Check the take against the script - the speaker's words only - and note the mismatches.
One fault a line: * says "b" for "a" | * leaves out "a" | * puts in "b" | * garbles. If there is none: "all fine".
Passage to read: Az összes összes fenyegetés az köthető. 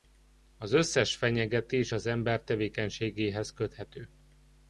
* leaves out "összes"
* puts in "ember tevékenységéhez"